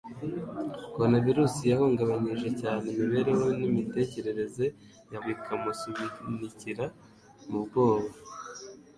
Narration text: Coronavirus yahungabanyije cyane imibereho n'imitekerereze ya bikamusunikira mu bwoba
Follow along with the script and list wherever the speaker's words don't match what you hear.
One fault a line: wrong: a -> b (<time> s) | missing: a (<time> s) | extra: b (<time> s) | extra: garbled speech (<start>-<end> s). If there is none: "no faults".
no faults